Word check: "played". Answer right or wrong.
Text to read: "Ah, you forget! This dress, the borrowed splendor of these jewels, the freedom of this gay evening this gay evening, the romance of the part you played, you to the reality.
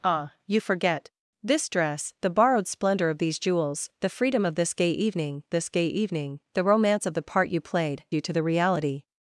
right